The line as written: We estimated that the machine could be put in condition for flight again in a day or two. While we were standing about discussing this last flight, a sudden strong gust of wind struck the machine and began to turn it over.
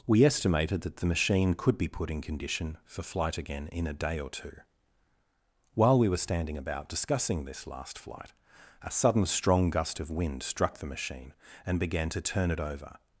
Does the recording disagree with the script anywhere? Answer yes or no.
no